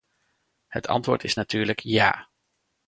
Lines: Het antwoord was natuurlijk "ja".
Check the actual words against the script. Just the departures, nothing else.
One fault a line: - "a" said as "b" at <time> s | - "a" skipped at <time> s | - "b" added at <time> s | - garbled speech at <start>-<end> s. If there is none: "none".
- "was" said as "is" at 1.2 s